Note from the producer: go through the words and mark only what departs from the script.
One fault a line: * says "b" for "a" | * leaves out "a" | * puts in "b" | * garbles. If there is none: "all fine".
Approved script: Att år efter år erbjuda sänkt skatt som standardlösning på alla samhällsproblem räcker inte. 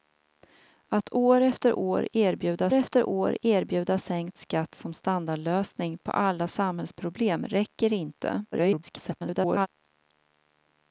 * puts in "efter år erbjuda"
* garbles